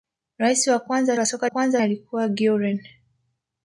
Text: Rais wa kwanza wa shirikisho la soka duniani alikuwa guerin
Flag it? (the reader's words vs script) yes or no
yes